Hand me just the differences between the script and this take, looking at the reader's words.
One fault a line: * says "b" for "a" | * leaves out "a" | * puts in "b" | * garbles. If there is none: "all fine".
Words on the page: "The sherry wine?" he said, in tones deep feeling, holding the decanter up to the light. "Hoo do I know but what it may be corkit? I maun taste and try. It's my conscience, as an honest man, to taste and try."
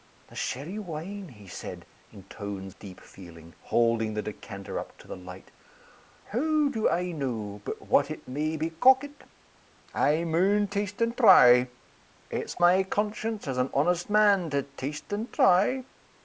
all fine